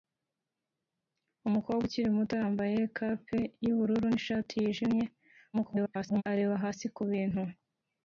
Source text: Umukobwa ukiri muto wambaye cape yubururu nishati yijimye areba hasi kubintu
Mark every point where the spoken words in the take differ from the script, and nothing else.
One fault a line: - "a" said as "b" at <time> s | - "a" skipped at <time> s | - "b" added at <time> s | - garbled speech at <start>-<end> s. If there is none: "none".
- garbled speech at 5.5-6.2 s